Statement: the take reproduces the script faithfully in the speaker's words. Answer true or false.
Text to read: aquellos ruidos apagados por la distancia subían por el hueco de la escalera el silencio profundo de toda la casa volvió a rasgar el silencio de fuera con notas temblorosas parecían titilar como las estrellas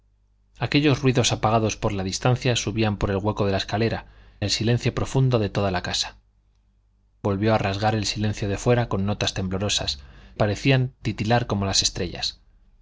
true